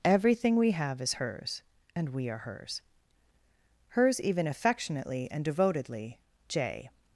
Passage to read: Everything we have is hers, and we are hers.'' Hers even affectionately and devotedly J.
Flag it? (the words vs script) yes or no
no